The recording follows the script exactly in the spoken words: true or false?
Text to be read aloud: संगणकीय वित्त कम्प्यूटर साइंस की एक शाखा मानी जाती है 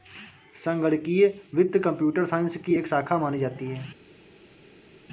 true